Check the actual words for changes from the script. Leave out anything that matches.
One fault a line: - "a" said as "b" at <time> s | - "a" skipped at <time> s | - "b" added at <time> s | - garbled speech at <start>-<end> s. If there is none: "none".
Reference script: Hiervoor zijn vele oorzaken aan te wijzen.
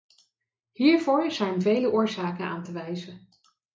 none